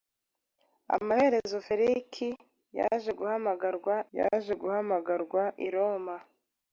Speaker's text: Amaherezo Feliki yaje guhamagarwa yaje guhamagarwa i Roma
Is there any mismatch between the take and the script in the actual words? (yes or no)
no